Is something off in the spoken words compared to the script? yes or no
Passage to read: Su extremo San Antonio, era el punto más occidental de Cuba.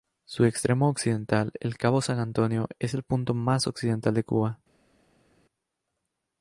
yes